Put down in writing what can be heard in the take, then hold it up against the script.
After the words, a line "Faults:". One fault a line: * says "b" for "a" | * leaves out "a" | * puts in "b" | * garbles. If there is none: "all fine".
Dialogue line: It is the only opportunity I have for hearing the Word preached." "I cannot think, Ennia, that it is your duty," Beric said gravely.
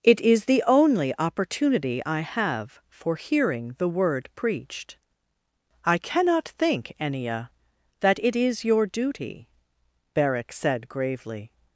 It is the only opportunity I have for hearing the Word preached." "I cannot think, Ennia, that it is your duty," Beric said gravely.
Faults:
all fine